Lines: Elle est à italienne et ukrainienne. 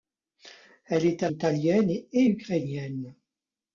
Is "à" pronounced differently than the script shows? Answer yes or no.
no